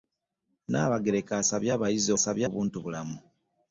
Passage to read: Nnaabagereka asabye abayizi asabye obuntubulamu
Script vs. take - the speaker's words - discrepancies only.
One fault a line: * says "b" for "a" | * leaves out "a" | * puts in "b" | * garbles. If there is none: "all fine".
all fine